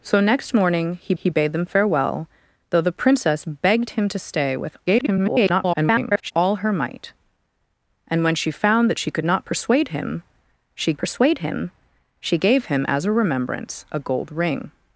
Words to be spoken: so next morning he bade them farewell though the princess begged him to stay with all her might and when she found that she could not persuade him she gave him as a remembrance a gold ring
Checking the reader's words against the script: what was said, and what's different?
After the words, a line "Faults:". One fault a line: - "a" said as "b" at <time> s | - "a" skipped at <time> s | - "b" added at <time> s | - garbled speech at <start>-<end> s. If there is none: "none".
so next morning he he bade them farewell though the princess begged him to stay with [garbled] all her might and when she found that she could not persuade him she persuade him she gave him as a remembrance a gold ring
Faults:
- "he" added at 1.2 s
- garbled speech at 4.9-6.3 s
- "persuade him she" added at 11.0 s